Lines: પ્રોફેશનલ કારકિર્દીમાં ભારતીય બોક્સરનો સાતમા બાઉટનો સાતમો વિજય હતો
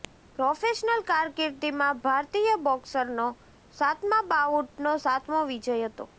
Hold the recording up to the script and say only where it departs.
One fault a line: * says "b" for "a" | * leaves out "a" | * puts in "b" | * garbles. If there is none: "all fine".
all fine